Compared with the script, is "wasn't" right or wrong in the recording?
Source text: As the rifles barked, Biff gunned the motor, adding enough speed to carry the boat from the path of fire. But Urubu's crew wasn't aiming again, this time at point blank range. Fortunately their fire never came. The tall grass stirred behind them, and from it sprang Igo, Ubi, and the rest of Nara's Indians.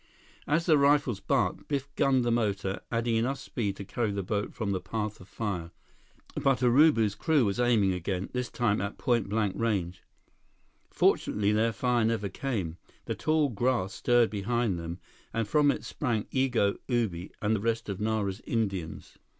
wrong